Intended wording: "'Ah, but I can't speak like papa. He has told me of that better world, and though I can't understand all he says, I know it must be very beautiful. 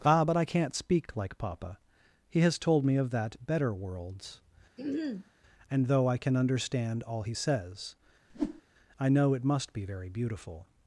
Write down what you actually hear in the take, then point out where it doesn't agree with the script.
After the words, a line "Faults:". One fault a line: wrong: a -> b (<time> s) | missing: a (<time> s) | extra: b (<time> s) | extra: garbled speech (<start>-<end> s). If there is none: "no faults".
"'Ah, but I can't speak like papa. He has told me of that better worlds, and though I can understand all he says, I know it must be very beautiful.
Faults:
wrong: world -> worlds (3.7 s)
wrong: can't -> can (6.2 s)